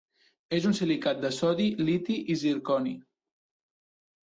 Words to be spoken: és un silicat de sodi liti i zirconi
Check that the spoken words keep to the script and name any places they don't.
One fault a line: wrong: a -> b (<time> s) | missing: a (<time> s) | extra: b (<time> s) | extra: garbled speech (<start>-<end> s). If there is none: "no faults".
no faults